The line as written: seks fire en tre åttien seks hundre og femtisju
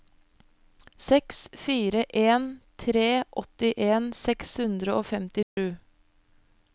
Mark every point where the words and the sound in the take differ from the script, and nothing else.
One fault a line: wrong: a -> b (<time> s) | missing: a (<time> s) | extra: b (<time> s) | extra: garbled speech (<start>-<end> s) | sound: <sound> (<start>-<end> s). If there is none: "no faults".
sound: dropout (5.4-5.6 s)